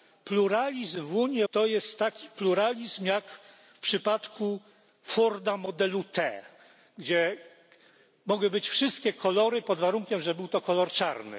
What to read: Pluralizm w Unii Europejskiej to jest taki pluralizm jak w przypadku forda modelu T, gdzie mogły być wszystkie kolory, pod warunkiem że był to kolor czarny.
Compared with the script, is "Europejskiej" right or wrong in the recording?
wrong